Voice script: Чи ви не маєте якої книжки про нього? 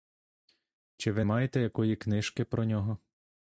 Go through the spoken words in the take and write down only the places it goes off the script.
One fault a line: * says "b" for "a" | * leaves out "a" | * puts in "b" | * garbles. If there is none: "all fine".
* leaves out "не"